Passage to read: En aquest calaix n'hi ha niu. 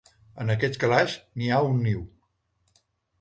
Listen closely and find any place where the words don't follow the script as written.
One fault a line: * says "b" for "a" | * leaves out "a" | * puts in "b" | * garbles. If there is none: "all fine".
* puts in "un"